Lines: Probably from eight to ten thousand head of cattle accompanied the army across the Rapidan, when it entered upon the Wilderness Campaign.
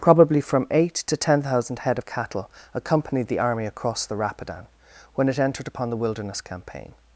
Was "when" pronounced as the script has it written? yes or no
yes